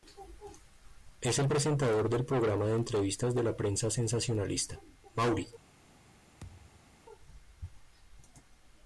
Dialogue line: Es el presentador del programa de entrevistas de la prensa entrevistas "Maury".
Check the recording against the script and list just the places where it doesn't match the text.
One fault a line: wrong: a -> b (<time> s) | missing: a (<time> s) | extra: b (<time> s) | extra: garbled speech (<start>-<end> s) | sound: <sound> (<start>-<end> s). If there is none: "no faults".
wrong: entrevistas -> sensacionalista (3.9 s)
sound: thud (6.4-7.0 s)